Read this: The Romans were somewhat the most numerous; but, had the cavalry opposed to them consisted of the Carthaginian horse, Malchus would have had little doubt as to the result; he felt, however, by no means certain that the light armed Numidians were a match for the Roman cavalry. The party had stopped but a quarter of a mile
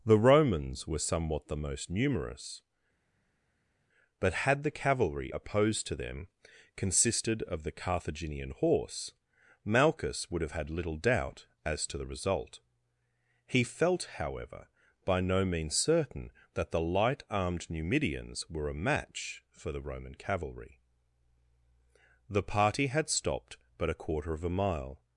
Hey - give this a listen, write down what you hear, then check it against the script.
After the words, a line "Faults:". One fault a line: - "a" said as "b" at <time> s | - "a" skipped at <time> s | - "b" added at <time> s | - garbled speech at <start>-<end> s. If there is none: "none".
The Romans were somewhat the most numerous; but, had the cavalry opposed to them consisted of the Carthaginian horse, Malchus would have had little doubt as to the result; he felt, however, by no means certain that the light armed Numidians were a match for the Roman cavalry. The party had stopped but a quarter of a mile
Faults:
none